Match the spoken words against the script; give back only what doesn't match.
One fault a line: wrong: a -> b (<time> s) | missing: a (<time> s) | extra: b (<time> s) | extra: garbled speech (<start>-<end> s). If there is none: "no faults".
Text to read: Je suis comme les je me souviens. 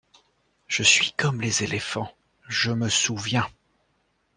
extra: éléphants (1.6 s)